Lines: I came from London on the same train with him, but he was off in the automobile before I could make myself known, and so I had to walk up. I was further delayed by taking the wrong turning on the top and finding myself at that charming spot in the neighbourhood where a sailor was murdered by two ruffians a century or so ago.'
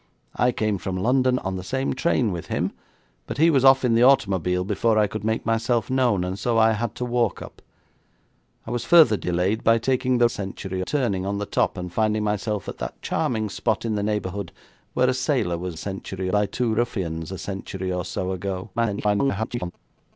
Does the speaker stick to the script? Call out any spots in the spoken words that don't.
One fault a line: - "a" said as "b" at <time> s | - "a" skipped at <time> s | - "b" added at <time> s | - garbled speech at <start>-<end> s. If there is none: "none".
- "wrong" said as "century" at 10.3 s
- "murdered" said as "century" at 15.8 s
- garbled speech at 18.7-19.7 s